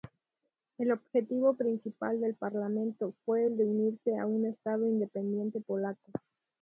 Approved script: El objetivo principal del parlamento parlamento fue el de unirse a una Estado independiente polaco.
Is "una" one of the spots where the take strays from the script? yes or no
yes